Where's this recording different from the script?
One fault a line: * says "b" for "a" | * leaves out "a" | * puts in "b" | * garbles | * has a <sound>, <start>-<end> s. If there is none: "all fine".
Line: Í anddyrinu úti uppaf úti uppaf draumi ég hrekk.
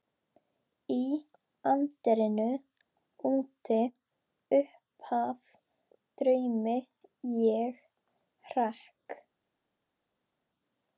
* leaves out "úti uppaf"